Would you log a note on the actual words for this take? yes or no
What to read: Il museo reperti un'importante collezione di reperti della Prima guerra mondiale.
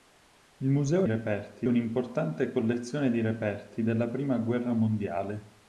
no